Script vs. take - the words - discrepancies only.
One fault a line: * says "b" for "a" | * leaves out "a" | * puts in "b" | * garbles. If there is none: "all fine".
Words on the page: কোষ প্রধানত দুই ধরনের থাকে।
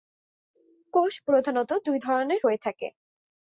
* puts in "হয়ে"